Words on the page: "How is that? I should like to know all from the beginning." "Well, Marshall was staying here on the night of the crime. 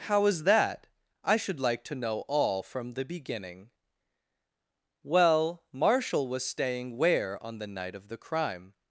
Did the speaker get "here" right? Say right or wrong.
wrong